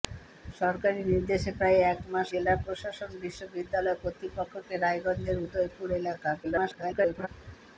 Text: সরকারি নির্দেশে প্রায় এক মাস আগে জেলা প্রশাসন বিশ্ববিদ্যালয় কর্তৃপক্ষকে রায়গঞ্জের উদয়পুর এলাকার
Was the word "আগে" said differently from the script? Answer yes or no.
yes